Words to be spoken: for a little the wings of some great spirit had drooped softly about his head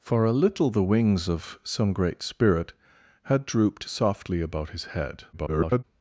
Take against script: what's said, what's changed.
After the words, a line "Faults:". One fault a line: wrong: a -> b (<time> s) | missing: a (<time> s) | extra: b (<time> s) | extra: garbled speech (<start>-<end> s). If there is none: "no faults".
for a little the wings of some great spirit had drooped softly about his head [garbled]
Faults:
extra: garbled speech (5.3-5.8 s)